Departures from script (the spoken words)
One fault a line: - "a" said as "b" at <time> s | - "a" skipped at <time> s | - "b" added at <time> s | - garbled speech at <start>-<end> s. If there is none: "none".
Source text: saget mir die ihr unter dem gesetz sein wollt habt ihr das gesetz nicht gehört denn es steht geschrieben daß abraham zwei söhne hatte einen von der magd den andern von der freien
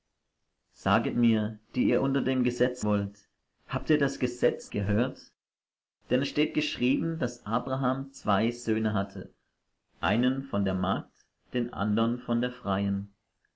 - "sein" skipped at 2.8 s
- "nicht" skipped at 4.7 s